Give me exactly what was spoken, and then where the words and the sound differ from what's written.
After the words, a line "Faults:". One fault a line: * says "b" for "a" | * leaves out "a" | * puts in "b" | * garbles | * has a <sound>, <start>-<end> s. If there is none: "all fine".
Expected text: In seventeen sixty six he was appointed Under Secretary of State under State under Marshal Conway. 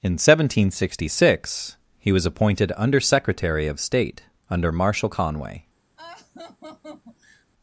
In seventeen sixty six he was appointed Under Secretary of State under Marshal Conway.
Faults:
* leaves out "State under"
* has a laugh, 6.0-7.5 s